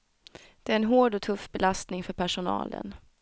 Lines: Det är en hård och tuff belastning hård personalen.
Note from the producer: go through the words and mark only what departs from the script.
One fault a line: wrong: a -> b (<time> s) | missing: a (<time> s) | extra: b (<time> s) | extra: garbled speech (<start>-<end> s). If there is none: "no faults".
wrong: hård -> för (2.0 s)